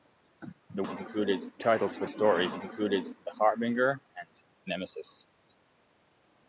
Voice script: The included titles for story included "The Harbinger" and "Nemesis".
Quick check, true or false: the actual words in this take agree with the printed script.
true